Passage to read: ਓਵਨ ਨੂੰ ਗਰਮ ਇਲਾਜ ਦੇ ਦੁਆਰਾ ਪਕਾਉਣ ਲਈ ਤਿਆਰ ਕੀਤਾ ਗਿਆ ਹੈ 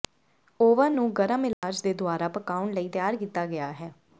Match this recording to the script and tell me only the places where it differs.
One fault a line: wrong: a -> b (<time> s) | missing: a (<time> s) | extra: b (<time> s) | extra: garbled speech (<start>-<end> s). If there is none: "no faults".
no faults